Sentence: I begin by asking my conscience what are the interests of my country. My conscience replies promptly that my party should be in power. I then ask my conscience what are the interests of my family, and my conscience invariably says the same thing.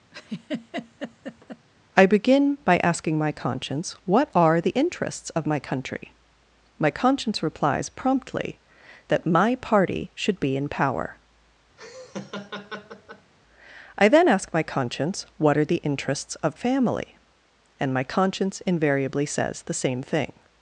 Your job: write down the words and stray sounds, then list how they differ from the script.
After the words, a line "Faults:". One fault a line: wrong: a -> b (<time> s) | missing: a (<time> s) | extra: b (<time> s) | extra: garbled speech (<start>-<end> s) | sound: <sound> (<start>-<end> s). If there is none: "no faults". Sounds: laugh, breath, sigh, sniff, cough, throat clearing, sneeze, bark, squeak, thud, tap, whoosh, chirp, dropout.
I begin by asking my conscience what are the interests of my country. My conscience replies promptly that my party should be in power. I then ask my conscience what are the interests of family, and my conscience invariably says the same thing.
Faults:
sound: laugh (0.1-1.7 s)
sound: laugh (11.8-13.3 s)
missing: my (16.6 s)